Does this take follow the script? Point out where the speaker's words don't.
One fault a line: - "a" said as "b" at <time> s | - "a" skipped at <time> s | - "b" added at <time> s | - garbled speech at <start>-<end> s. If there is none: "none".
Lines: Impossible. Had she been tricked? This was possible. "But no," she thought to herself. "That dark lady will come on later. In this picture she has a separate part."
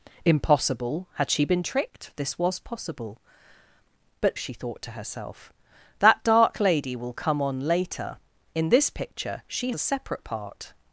- "no" skipped at 4.4 s
- "has" skipped at 9.7 s